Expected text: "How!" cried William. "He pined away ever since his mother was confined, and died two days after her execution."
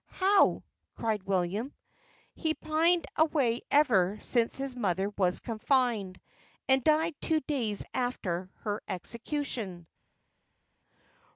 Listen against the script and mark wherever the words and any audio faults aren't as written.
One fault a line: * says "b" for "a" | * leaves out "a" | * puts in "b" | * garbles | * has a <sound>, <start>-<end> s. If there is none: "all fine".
all fine